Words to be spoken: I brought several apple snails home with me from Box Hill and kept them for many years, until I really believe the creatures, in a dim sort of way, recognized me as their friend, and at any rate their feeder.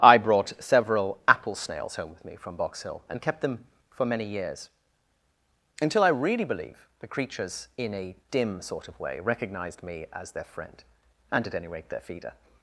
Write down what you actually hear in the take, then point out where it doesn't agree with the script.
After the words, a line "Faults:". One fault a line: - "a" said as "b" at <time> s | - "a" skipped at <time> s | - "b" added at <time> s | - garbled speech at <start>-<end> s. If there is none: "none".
I brought several apple snails home with me from Box Hill and kept them for many years, until I really believe the creatures, in a dim sort of way, recognized me as their friend, and at any rate their feeder.
Faults:
none